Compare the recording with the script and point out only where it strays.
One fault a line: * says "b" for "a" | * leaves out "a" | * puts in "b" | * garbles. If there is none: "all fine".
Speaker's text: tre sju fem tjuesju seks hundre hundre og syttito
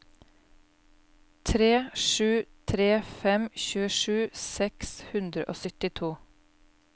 * puts in "tre"
* leaves out "hundre"